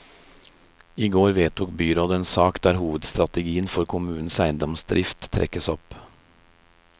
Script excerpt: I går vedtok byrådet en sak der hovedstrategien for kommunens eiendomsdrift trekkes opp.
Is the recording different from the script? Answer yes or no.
no